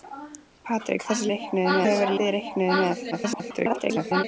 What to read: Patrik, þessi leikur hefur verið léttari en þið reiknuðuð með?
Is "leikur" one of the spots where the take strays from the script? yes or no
yes